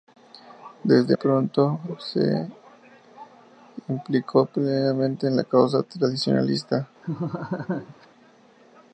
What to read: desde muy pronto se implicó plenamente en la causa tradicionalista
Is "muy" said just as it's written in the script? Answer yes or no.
no